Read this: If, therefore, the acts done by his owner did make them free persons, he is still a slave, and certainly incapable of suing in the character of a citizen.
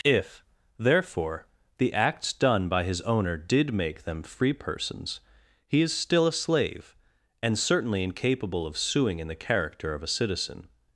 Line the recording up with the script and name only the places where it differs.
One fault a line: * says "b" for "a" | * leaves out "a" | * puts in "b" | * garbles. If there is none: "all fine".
all fine